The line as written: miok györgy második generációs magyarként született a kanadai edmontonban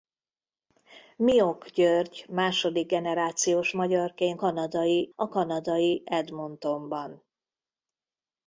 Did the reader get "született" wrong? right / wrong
wrong